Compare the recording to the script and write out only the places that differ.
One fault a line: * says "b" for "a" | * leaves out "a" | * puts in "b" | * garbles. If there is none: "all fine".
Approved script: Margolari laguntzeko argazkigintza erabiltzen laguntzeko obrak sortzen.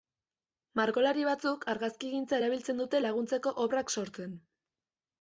* says "batzuk" for "laguntzeko"
* puts in "dute"